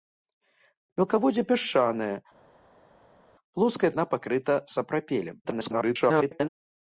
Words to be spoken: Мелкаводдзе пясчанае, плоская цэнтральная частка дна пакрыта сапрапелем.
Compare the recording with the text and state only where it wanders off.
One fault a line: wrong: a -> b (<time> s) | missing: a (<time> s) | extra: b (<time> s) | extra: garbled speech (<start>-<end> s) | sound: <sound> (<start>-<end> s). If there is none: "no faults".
missing: цэнтральная частка (3.9 s)
extra: garbled speech (5.4-6.5 s)